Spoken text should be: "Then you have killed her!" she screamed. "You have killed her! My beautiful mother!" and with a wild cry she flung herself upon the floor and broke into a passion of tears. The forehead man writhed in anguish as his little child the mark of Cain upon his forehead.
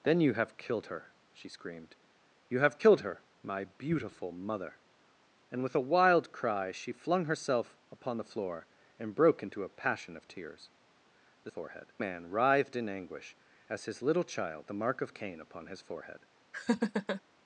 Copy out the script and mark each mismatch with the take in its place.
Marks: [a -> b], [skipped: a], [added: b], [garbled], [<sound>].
"Then you have killed her!" she screamed. "You have killed her! My beautiful mother!" and with a wild cry she flung herself upon the floor and broke into a passion of tears. The forehead man writhed in anguish as his little child the mark of Cain upon his forehead. [laugh]